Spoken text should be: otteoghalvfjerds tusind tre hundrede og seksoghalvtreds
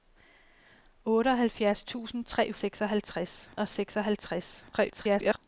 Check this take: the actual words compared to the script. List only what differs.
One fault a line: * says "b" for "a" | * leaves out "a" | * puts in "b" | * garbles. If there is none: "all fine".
* says "seksoghalvtreds" for "hundrede"
* garbles